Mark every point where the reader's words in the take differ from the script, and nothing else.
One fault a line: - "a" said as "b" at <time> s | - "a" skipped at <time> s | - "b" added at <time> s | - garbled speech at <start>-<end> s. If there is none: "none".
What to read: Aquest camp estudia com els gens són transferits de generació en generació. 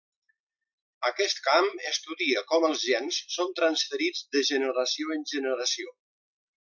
none